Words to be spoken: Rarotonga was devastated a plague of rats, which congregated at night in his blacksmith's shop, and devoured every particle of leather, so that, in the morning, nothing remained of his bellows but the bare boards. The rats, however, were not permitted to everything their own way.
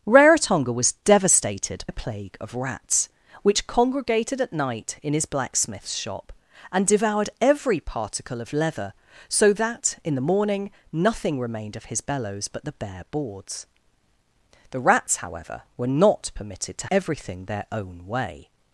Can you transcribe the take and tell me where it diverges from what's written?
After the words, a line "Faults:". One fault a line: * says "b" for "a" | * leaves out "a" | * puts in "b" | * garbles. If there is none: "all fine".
Rarotonga was devastated a plague of rats, which congregated at night in his blacksmith's shop, and devoured every particle of leather, so that, in the morning, nothing remained of his bellows but the bare boards. The rats, however, were not permitted to everything their own way.
Faults:
all fine